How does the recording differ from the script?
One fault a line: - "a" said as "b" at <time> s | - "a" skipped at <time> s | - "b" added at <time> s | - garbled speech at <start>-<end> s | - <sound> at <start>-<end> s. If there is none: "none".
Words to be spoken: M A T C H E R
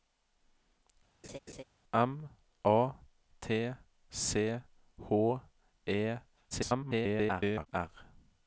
- laugh at 1.2-1.6 s
- garbled speech at 6.5-7.7 s